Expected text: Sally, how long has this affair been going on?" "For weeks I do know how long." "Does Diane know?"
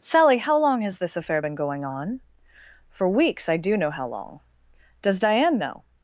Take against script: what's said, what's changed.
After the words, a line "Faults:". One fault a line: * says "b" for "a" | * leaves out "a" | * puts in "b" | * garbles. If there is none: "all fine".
Sally, how long has this affair been going on?" "For weeks I do know how long." "Does Diane know?"
Faults:
all fine